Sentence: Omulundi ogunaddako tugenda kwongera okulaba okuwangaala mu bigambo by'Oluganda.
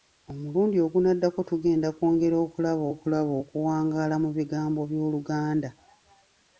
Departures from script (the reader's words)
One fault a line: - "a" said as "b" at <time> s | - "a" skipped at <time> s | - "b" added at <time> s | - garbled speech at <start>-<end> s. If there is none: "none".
- "okulaba" added at 2.9 s